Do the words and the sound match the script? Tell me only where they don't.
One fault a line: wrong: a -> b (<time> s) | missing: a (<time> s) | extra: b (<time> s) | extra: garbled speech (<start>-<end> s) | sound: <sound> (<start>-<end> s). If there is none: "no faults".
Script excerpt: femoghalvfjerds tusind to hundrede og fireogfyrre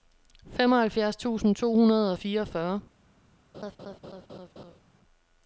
sound: laugh (3.5-4.8 s)